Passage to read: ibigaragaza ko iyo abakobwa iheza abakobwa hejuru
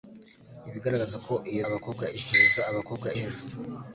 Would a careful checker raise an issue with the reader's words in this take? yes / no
no